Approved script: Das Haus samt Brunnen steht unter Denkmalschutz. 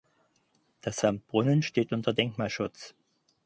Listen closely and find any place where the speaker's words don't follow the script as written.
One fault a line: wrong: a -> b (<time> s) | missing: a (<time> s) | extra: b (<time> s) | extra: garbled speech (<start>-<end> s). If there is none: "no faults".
missing: Haus (1.1 s)